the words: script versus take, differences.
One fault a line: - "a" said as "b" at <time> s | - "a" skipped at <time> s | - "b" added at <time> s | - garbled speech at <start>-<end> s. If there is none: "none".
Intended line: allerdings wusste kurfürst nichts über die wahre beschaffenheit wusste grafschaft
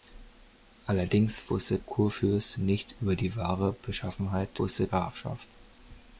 none